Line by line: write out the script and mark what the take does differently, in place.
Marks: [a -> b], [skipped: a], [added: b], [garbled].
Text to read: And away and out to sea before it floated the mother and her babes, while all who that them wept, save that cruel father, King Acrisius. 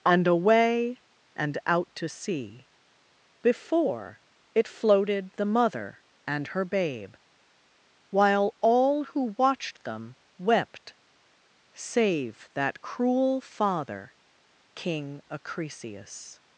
And away and out to sea before it floated the mother and her [babes, -> babe] while all who [that -> watched] them wept, save that cruel father, King Acrisius.